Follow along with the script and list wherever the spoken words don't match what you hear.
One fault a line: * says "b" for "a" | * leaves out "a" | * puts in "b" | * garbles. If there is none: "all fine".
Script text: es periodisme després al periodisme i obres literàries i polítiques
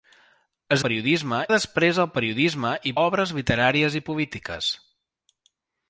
all fine